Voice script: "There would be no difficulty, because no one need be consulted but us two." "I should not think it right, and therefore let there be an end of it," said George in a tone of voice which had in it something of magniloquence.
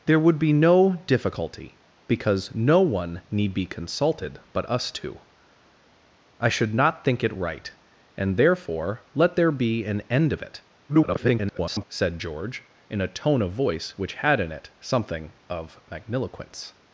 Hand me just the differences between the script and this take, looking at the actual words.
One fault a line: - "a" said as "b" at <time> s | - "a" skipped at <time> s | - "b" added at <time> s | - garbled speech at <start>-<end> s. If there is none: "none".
- garbled speech at 10.9-11.9 s